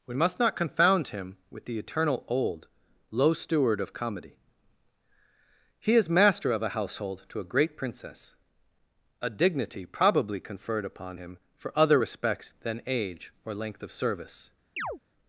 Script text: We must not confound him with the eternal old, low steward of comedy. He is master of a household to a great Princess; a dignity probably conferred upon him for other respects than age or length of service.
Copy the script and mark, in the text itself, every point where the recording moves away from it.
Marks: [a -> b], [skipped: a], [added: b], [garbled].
We must not confound him with the eternal old, low steward of comedy. He is master of a household to a great Princess; a dignity probably conferred upon him for other respects than age or length of service.